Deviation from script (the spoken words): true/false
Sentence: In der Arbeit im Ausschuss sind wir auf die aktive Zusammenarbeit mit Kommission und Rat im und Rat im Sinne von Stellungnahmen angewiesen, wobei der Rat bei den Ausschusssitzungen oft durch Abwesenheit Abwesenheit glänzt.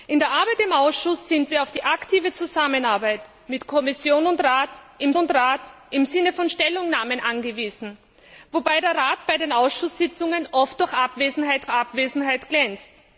false